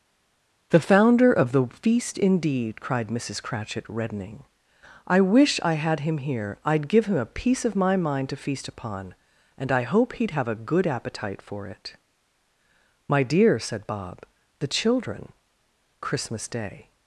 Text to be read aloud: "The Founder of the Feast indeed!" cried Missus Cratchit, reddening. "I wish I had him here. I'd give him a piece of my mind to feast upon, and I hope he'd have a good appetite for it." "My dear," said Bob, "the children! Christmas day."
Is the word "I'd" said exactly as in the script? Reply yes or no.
yes